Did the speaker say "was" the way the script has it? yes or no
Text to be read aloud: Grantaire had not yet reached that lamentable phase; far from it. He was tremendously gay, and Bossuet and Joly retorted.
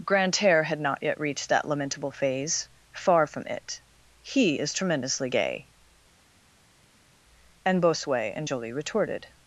no